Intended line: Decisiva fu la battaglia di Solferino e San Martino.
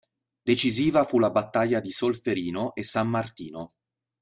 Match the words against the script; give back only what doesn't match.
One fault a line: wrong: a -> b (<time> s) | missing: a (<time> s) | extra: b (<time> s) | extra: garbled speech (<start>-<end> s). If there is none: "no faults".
no faults